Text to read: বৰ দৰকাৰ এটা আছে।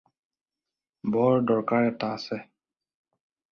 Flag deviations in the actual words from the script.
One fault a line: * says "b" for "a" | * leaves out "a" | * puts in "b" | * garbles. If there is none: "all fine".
all fine